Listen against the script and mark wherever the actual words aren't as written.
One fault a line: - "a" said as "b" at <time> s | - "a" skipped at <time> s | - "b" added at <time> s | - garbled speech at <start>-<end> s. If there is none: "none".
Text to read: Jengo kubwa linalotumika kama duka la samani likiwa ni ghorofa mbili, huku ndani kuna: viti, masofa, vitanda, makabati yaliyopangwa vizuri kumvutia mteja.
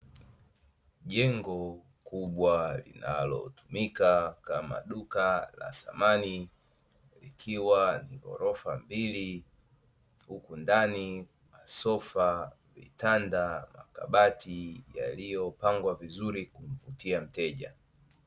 - "kuna viti" skipped at 11.3 s